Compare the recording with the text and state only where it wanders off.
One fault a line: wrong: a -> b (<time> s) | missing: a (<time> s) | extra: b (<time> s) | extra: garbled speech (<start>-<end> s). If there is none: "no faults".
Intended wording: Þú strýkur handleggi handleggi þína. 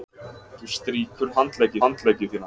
no faults